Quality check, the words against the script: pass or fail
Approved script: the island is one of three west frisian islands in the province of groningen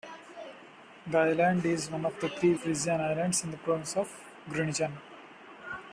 fail